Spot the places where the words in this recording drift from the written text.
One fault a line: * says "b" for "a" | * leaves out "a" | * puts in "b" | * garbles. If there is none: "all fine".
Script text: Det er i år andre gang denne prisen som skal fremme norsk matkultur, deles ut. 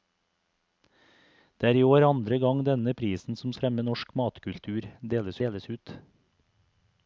* leaves out "skal"
* puts in "deles"